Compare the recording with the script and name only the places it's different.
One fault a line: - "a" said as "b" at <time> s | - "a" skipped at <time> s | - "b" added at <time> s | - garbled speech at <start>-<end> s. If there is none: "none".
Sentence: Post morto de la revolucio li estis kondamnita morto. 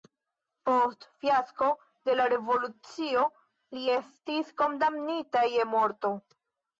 - "morto" said as "fiasko" at 1.2 s
- "je" added at 5.6 s